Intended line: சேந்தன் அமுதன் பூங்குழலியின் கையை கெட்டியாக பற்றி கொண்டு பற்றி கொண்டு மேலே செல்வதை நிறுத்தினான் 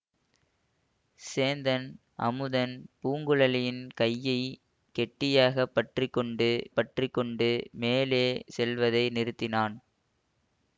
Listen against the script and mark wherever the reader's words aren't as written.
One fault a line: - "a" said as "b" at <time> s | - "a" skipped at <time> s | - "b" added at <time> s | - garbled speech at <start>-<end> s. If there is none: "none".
none